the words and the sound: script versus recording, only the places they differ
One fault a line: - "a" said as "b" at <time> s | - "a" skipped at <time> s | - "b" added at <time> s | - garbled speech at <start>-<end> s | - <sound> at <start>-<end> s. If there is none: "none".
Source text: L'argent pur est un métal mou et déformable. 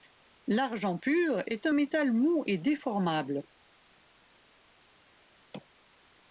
none